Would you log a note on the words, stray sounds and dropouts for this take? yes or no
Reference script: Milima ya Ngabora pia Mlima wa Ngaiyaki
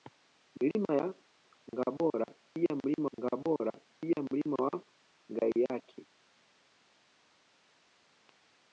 yes